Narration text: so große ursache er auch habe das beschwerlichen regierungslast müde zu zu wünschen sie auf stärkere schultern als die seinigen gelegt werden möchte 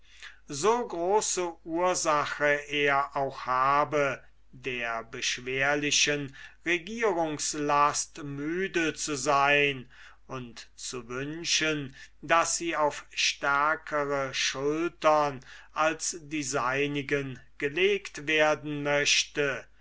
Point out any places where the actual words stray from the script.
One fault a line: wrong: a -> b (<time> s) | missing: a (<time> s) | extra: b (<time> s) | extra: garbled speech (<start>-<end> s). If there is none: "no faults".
wrong: das -> der (4.5 s)
extra: sein und (9.2 s)
extra: daß (12.2 s)